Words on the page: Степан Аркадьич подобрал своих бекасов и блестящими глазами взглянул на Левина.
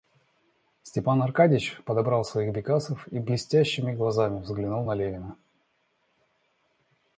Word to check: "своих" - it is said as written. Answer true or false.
true